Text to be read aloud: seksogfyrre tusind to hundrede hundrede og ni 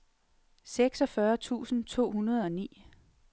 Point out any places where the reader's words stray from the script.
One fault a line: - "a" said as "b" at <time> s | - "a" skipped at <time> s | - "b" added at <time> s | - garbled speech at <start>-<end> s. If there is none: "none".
- "hundrede" skipped at 2.5 s